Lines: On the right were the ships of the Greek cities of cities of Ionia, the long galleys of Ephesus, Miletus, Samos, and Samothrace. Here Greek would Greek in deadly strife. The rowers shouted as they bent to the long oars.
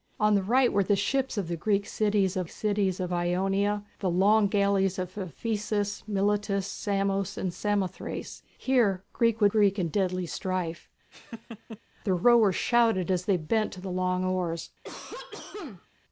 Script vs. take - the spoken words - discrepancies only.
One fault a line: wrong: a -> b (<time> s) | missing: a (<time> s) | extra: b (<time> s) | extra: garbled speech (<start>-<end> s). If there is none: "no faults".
no faults